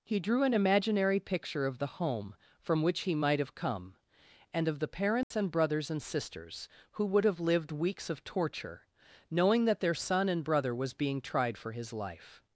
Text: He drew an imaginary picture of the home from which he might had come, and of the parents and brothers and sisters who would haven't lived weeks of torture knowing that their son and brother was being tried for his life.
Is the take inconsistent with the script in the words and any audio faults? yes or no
yes